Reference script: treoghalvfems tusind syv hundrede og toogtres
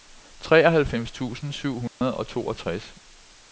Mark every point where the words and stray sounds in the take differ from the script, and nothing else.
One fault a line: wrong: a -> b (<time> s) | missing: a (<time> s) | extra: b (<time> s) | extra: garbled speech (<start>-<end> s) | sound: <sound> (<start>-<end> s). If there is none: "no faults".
sound: dropout (1.9-2.0 s)